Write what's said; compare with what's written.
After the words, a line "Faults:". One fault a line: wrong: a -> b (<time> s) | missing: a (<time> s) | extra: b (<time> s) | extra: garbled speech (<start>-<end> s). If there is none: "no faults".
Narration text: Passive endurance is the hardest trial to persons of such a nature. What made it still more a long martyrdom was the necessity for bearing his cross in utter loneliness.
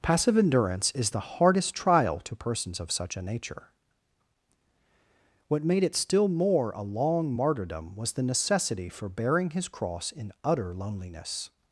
Passive endurance is the hardest trial to persons of such a nature. What made it still more a long martyrdom was the necessity for bearing his cross in utter loneliness.
Faults:
no faults